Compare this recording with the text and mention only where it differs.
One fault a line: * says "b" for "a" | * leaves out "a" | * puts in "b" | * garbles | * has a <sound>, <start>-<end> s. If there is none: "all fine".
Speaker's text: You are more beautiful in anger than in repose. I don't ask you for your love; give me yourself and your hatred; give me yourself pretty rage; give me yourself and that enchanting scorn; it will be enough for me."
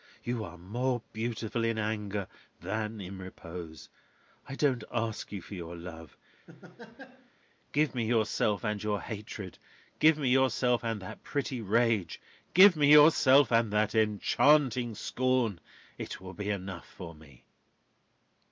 * has a laugh, 6.5-7.3 s
* puts in "and that"